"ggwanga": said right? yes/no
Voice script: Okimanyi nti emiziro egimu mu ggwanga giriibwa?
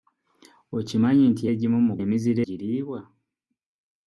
no